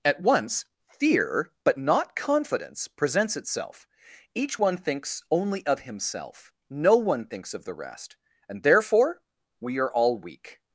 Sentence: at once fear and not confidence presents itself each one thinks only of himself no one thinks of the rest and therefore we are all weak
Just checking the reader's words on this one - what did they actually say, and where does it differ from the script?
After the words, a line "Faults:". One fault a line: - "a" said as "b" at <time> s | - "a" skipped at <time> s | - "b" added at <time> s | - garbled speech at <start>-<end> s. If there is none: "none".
at once fear but not confidence presents itself each one thinks only of himself no one thinks of the rest and therefore we are all weak
Faults:
- "and" said as "but" at 1.6 s